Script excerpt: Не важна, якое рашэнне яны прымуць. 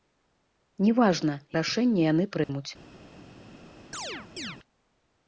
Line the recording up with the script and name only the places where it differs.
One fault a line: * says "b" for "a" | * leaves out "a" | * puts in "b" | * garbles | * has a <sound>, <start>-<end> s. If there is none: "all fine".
* leaves out "якое"
* has a dropout, 2.4-2.5 s
* has a chirp, 3.9-4.6 s